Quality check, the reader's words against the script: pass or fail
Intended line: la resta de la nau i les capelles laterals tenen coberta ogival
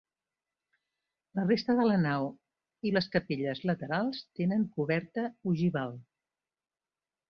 pass